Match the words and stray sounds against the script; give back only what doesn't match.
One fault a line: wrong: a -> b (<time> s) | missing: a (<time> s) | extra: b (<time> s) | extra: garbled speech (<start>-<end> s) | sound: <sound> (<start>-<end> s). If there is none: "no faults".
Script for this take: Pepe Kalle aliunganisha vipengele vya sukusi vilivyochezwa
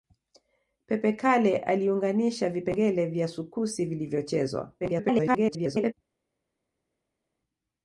extra: garbled speech (4.8-5.9 s)